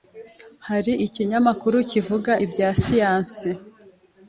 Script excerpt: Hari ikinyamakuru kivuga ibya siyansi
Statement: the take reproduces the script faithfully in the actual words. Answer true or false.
true